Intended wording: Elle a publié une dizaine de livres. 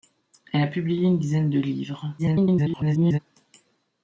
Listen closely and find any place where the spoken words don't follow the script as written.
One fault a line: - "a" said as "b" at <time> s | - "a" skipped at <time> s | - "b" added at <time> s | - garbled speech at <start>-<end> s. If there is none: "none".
- garbled speech at 2.2-3.2 s